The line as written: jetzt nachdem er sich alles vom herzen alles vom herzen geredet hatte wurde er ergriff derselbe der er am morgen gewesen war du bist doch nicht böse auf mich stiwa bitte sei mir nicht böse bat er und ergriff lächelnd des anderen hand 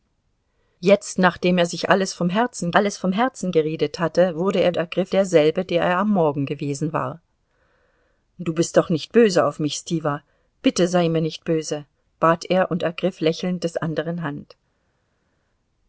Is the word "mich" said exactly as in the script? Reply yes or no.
yes